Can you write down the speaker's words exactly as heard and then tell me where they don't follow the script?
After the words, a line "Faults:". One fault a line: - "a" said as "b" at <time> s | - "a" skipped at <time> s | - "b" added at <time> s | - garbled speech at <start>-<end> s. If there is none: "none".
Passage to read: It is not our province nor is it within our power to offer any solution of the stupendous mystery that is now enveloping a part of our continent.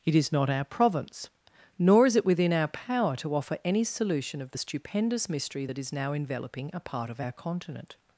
It is not our province nor is it within our power to offer any solution of the stupendous mystery that is now enveloping a part of our continent.
Faults:
none